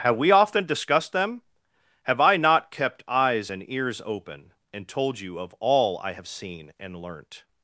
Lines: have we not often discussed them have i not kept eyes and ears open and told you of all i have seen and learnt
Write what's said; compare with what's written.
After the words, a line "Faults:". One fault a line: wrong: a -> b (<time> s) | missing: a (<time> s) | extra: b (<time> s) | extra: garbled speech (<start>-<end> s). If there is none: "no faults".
have we often discussed them have i not kept eyes and ears open and told you of all i have seen and learnt
Faults:
missing: not (0.3 s)